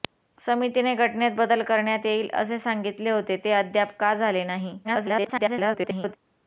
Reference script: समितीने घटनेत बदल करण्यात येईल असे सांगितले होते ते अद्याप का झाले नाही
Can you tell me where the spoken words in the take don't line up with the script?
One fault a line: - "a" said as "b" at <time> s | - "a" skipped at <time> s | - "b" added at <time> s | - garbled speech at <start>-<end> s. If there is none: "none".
- garbled speech at 4.8-6.2 s